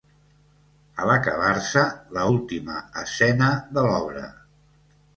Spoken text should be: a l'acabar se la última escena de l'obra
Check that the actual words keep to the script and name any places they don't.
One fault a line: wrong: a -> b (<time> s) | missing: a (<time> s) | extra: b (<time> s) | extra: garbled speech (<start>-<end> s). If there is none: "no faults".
no faults